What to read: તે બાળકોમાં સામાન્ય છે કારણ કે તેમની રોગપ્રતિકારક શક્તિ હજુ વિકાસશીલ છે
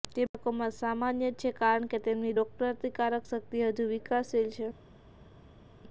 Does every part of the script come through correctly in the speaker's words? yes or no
yes